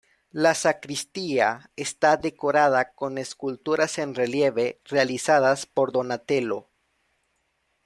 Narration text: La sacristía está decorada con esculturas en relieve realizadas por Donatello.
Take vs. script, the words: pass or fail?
pass